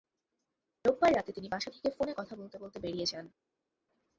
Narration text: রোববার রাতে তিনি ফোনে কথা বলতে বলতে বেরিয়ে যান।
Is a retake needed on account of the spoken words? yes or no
yes